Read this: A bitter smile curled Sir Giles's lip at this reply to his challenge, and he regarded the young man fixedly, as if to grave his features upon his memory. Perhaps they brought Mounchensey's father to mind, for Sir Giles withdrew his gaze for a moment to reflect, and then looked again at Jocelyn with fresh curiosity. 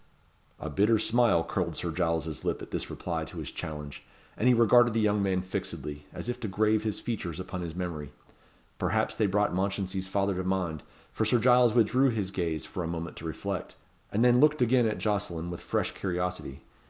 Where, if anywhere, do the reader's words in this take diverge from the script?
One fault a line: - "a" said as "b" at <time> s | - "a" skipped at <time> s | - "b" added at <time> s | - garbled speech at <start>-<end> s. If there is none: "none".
none